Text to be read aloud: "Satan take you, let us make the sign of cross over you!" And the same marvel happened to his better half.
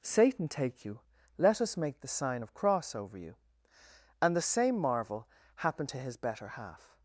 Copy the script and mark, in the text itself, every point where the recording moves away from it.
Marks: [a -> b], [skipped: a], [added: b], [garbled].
"Satan take you, let us make the sign of cross over you!" And the same marvel happened to his better half.